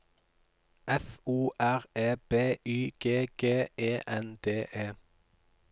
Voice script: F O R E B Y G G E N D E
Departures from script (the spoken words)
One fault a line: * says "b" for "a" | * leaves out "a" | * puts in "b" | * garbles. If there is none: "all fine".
all fine